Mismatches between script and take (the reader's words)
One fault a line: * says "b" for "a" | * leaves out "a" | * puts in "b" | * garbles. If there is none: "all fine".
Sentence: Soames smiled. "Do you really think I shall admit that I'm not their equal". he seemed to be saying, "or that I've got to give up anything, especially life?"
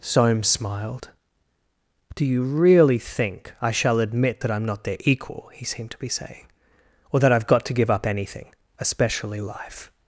all fine